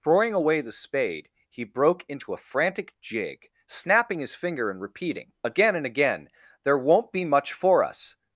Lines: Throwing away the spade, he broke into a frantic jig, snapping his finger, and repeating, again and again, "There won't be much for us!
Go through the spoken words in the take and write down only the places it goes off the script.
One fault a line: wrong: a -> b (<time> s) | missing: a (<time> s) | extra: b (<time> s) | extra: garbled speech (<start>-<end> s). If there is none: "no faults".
no faults